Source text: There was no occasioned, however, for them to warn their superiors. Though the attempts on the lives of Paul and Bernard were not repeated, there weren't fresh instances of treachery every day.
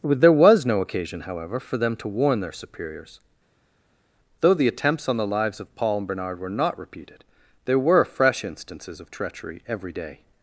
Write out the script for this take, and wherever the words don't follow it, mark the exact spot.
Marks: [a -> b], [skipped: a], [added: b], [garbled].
There was no [occasioned, -> occasion] however, for them to warn their superiors. Though the attempts on the lives of Paul and Bernard were not repeated, there [weren't -> were] fresh instances of treachery every day.